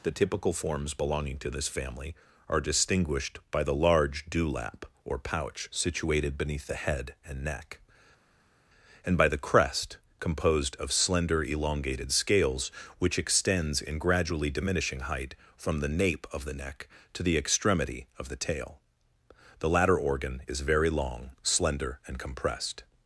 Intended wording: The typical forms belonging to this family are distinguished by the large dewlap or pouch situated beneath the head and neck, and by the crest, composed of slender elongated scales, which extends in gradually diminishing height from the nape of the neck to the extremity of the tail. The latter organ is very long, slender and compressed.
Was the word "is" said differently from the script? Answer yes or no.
no